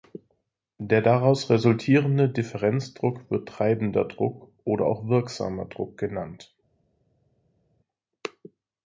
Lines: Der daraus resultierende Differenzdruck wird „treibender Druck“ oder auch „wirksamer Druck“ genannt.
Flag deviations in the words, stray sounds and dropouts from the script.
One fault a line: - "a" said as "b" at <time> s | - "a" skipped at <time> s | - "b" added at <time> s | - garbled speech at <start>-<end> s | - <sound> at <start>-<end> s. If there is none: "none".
none